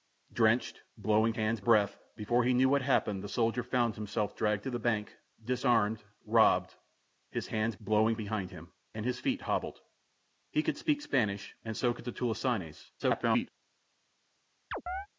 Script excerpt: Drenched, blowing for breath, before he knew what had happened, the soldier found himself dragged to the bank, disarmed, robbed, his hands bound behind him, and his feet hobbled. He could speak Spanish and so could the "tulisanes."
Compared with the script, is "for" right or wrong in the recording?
wrong